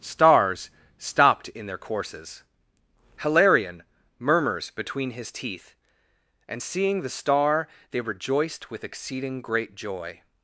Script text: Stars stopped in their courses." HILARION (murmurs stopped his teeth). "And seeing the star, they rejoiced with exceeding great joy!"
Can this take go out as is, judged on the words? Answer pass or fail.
fail